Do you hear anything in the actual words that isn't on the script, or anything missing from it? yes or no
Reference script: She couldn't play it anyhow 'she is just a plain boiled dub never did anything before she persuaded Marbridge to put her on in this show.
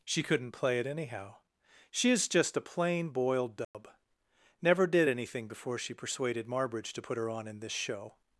no